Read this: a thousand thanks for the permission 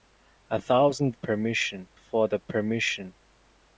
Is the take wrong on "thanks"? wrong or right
wrong